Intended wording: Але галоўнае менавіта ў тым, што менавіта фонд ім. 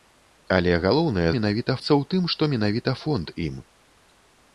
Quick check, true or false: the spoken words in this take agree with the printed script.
true